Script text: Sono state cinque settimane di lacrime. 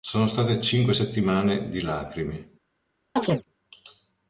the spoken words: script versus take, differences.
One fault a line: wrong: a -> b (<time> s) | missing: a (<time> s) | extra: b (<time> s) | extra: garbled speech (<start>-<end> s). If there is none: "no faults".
no faults